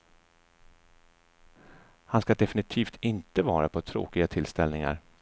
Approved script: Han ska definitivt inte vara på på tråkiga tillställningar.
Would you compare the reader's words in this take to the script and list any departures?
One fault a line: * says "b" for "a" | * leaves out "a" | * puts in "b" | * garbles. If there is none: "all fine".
* leaves out "på"